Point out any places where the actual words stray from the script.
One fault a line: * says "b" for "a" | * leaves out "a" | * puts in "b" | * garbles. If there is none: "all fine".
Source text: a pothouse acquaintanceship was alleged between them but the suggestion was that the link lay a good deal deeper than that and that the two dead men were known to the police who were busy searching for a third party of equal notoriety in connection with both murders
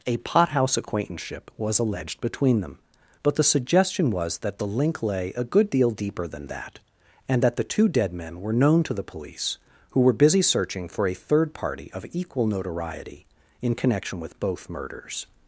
all fine